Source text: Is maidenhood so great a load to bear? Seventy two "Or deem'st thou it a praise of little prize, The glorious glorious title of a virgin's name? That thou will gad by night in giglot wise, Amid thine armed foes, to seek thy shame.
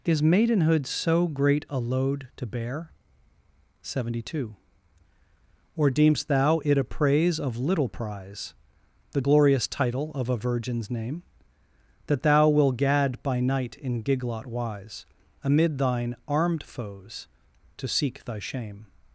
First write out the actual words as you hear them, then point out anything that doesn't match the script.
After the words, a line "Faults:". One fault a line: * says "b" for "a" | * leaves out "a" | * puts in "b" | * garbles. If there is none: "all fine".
Is maidenhood so great a load to bear? Seventy two "Or deem'st thou it a praise of little prize, The glorious title of a virgin's name? That thou will gad by night in giglot wise, Amid thine armed foes, to seek thy shame.
Faults:
* leaves out "glorious"